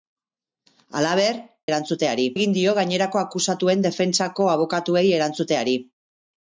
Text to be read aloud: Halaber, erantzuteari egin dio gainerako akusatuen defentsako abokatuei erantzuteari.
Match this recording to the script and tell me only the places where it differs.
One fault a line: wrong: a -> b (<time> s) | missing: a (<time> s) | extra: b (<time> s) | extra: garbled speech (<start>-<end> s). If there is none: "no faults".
no faults